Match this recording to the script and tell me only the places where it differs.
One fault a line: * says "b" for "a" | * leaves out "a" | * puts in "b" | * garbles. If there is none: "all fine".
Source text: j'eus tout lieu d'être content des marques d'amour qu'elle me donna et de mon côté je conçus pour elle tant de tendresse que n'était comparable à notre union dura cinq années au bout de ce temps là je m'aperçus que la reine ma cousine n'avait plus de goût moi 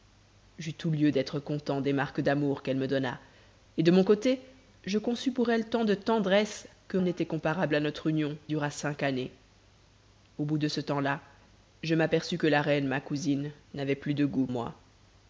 all fine